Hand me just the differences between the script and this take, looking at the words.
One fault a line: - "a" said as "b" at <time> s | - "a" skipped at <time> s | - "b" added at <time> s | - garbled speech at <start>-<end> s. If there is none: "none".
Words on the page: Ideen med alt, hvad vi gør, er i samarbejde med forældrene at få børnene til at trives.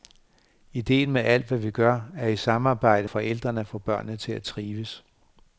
- "med" skipped at 3.1 s